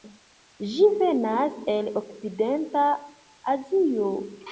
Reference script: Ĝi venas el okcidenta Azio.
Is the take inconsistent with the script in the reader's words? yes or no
no